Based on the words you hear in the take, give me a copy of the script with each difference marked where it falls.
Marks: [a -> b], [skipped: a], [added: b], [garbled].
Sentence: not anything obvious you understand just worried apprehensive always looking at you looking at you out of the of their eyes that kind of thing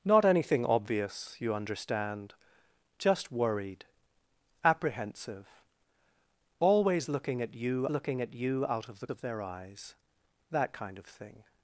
not anything obvious you understand just worried apprehensive always looking at you looking at you out of the of their eyes that kind of thing